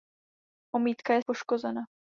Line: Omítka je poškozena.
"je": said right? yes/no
yes